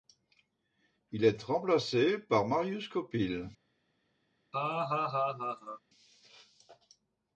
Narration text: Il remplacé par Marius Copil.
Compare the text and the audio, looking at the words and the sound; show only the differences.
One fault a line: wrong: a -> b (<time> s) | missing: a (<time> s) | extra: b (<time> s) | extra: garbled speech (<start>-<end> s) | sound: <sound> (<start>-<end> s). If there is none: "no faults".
extra: est (1.2 s)
sound: laugh (4.5-5.8 s)